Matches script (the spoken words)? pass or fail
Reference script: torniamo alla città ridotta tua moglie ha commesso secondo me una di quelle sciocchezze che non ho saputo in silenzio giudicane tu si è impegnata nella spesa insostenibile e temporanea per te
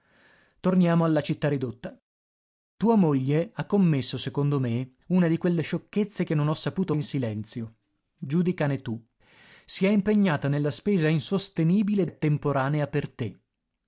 pass